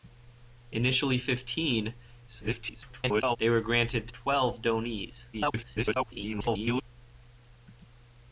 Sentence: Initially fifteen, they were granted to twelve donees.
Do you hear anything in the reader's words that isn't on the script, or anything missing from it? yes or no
yes